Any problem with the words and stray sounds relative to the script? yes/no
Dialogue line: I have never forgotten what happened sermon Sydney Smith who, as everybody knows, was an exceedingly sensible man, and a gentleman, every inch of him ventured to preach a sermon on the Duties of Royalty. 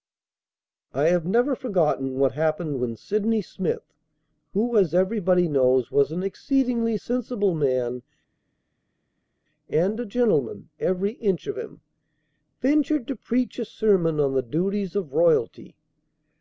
yes